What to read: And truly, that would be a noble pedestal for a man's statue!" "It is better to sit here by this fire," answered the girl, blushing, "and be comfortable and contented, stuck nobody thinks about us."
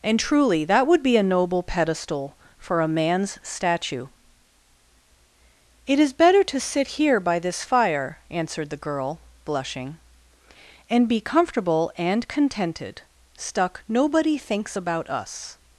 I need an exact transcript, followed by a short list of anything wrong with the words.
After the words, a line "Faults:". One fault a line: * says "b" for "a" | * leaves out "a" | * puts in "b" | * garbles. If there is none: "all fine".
And truly, that would be a noble pedestal for a man's statue!" "It is better to sit here by this fire," answered the girl, blushing, "and be comfortable and contented, stuck nobody thinks about us."
Faults:
all fine